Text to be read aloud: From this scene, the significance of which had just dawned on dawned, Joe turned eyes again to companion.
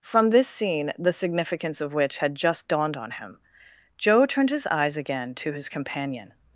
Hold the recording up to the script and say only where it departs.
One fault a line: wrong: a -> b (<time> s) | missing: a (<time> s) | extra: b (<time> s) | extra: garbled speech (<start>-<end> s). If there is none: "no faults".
wrong: dawned -> him (3.1 s)
extra: his (4.5 s)
extra: his (5.5 s)